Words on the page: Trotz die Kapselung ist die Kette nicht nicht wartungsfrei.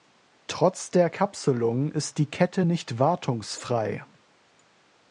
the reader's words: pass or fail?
fail